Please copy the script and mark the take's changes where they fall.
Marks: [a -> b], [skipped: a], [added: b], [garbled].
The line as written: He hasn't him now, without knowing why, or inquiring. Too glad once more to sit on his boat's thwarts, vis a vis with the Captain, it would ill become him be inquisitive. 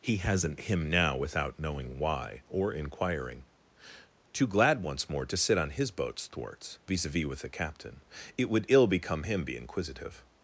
He hasn't him now, without knowing why, or inquiring. Too glad once more to sit on his boat's thwarts, vis a vis with the Captain, it would ill become him be inquisitive.